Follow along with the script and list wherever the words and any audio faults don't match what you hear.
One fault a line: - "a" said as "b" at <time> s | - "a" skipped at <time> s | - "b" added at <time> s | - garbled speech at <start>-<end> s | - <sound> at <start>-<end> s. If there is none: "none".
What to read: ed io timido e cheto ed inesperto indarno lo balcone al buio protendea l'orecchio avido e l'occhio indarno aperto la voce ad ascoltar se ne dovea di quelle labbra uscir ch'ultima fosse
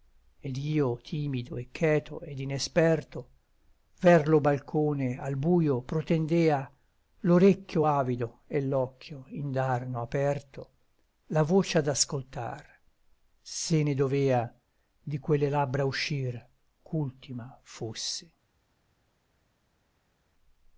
- "indarno" said as "ver" at 4.0 s